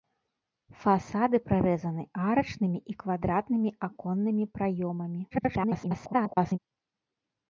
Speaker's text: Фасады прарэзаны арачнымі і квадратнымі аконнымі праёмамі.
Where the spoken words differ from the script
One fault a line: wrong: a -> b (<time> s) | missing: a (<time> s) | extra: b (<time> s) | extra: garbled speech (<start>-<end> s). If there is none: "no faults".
extra: garbled speech (5.3-6.6 s)